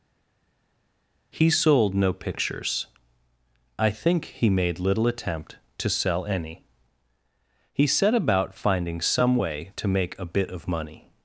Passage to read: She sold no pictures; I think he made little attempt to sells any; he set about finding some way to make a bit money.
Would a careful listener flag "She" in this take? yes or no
yes